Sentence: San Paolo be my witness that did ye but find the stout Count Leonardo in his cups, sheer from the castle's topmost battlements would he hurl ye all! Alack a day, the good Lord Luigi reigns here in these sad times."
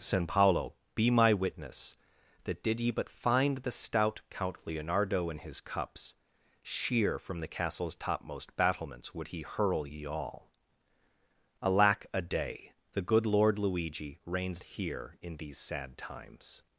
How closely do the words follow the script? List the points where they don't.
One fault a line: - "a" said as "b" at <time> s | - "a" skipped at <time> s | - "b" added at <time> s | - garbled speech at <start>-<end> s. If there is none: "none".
none